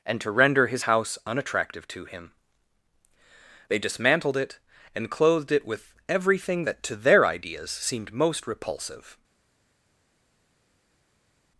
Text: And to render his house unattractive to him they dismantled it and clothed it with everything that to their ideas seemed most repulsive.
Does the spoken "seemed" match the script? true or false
true